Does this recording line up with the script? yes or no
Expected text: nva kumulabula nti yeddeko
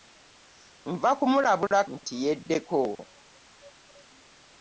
yes